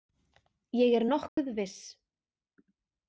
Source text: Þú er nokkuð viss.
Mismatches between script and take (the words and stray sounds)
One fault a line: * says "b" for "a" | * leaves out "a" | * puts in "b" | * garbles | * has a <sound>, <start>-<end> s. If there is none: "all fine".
* says "Ég" for "Þú"
* has a dropout, 1.3-1.4 s